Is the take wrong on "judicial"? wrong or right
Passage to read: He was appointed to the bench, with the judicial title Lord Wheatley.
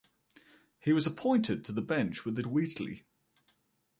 wrong